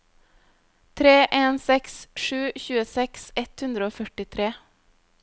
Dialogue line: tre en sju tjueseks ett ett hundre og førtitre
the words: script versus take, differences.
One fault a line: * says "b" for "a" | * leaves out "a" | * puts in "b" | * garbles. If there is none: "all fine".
* puts in "seks"
* leaves out "ett"